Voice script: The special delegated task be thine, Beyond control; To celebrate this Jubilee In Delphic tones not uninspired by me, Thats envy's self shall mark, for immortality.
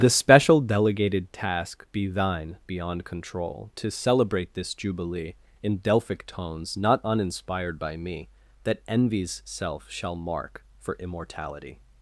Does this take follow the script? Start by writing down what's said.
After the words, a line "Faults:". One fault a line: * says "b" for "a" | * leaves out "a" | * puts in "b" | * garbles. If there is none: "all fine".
The special delegated task be thine, Beyond control; To celebrate this Jubilee In Delphic tones not uninspired by me, That envy's self shall mark, for immortality.
Faults:
* says "That" for "Thats"